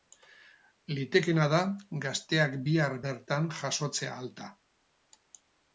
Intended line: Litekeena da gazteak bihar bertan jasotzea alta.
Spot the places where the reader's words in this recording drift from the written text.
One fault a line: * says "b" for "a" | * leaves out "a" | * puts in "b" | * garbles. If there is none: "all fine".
all fine